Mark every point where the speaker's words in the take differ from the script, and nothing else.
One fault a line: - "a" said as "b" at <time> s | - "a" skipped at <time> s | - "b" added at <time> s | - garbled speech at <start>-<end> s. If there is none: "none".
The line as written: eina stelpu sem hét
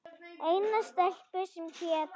none